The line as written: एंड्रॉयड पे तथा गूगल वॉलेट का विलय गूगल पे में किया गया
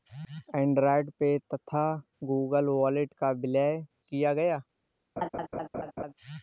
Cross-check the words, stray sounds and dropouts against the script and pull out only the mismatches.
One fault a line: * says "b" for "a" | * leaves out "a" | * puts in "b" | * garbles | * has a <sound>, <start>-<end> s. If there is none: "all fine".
* leaves out "गूगल पे में"
* has a laugh, 5.2-6.1 s